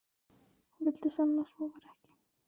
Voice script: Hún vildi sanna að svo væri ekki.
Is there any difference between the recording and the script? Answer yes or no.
no